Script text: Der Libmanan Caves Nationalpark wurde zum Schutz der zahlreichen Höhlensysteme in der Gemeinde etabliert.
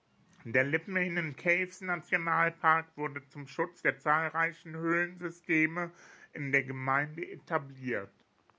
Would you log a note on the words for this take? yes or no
no